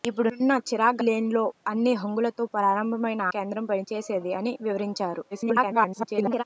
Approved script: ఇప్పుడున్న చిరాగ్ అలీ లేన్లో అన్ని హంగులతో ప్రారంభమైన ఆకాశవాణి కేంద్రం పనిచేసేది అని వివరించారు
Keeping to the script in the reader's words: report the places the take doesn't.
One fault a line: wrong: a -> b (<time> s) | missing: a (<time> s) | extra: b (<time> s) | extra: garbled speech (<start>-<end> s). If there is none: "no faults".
missing: అలీ (1.0 s)
missing: ఆకాశవాణి (3.2 s)
extra: garbled speech (5.3-6.4 s)